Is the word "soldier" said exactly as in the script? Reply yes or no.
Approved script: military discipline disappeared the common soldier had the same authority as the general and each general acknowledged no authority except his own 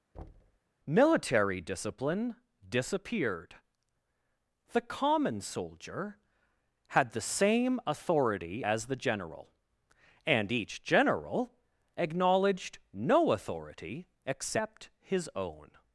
yes